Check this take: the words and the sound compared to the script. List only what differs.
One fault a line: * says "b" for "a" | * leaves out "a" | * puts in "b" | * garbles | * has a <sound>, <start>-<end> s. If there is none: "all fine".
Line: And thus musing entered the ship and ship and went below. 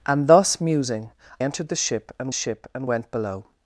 all fine